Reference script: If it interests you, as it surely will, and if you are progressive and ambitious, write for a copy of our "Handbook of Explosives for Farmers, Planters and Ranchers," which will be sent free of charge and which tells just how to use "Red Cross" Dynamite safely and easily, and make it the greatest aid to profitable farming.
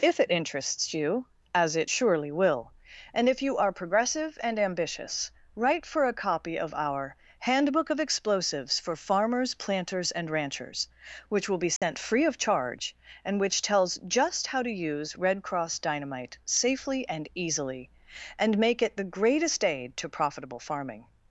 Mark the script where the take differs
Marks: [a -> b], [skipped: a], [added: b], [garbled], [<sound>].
If it interests you, as it surely will, and if you are progressive and ambitious, write for a copy of our "Handbook of Explosives for Farmers, Planters and Ranchers," which will be sent [dropout] free of charge and which tells just how to use "Red Cross" Dynamite safely and easily, and make it the greatest aid to profitable farming.